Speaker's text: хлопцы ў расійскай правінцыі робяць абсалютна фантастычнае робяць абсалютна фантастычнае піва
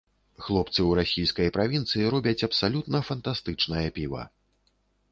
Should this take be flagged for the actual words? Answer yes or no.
yes